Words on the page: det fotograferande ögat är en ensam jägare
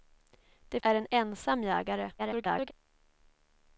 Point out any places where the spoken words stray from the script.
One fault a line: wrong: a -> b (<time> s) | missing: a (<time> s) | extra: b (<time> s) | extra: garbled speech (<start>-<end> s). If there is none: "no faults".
missing: fotograferande ögat (0.8 s)
extra: garbled speech (2.2-2.7 s)